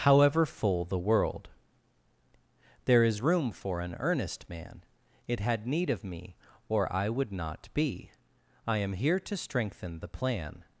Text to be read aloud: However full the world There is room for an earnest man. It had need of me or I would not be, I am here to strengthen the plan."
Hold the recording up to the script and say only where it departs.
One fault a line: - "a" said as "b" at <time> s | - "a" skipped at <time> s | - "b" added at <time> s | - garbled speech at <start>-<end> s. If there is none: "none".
none